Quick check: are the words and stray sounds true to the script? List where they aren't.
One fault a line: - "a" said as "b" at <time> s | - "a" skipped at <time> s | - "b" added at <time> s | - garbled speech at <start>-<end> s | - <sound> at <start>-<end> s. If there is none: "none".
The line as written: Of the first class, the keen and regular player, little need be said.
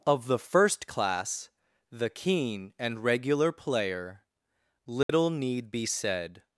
- dropout at 5.0-5.1 s